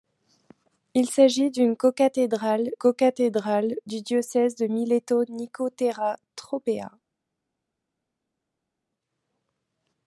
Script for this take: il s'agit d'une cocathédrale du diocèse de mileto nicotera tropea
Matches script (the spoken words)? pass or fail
fail